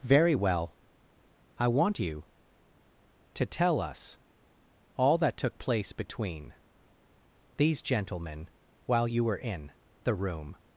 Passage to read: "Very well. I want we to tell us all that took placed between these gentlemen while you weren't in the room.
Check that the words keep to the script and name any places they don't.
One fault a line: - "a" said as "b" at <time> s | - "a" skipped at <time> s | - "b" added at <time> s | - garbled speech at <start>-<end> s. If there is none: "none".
- "we" said as "you" at 2.0 s
- "placed" said as "place" at 5.6 s
- "weren't" said as "were" at 9.2 s